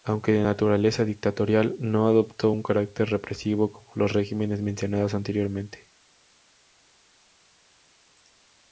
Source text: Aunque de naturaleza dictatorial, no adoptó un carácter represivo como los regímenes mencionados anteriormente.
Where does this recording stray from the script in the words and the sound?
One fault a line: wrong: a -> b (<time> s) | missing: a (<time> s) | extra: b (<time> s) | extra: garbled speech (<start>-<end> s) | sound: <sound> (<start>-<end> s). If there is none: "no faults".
no faults